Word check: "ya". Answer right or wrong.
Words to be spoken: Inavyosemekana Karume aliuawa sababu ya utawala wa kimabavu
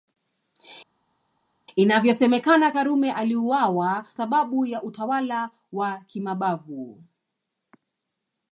right